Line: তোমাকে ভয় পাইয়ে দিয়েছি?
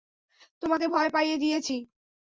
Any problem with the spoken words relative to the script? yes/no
no